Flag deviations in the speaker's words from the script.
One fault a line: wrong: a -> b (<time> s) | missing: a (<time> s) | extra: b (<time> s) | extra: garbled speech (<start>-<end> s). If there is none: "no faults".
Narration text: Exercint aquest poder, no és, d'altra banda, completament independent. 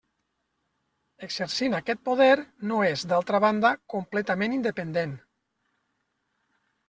no faults